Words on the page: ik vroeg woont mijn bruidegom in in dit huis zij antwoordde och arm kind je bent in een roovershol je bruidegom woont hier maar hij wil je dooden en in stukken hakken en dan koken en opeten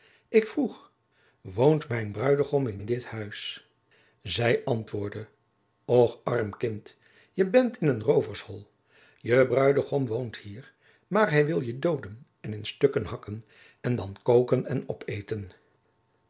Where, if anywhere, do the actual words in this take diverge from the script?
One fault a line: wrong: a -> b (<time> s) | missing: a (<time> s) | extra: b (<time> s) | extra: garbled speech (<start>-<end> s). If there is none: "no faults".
no faults